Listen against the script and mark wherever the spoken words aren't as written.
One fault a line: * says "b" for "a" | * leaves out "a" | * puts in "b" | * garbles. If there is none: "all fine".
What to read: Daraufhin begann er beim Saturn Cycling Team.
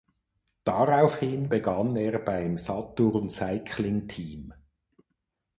all fine